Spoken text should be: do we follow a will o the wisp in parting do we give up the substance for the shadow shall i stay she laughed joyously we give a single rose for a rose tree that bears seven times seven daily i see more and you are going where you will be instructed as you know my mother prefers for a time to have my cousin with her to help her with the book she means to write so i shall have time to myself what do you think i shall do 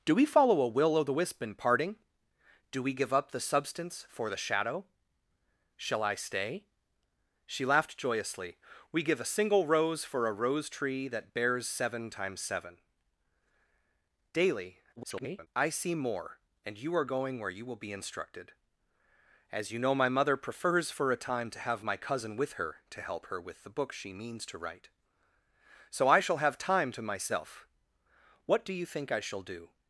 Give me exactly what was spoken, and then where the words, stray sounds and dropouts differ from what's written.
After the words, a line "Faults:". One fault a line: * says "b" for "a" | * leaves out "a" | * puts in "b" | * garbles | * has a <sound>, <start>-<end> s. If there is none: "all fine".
do we follow a will o the wisp in parting do we give up the substance for the shadow shall i stay she laughed joyously we give a single rose for a rose tree that bears seven times seven daily [garbled] i see more and you are going where you will be instructed as you know my mother prefers for a time to have my cousin with her to help her with the book she means to write so i shall have time to myself what do you think i shall do
Faults:
* garbles